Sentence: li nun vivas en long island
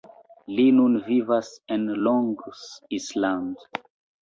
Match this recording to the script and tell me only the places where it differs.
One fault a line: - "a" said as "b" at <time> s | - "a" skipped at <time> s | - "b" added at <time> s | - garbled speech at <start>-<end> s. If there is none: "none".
none